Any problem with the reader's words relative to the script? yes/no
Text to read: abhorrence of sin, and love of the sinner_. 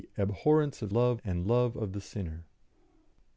yes